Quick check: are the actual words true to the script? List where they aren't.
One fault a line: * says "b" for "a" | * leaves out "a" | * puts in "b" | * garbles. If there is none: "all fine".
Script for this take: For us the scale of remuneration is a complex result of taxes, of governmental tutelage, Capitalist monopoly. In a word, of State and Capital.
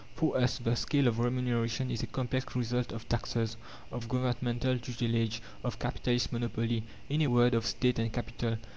* puts in "of"